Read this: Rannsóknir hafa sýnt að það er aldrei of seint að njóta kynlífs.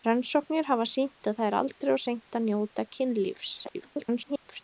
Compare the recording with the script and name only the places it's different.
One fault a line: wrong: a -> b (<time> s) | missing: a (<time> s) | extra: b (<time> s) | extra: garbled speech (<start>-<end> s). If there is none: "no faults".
extra: garbled speech (3.6-4.6 s)